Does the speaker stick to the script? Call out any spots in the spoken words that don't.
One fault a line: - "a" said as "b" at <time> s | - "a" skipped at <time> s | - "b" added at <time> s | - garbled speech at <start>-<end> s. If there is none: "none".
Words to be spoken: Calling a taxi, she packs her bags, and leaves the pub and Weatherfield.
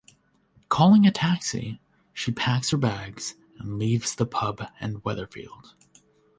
none